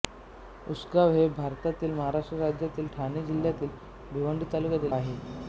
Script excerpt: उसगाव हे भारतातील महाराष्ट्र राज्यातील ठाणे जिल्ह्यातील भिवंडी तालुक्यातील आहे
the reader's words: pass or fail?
pass